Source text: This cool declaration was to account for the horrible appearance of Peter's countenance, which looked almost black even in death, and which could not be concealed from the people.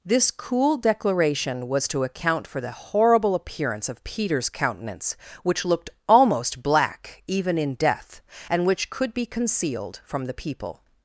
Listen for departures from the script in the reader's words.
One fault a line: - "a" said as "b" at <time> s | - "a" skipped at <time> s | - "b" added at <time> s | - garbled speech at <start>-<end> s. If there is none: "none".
- "not" skipped at 9.1 s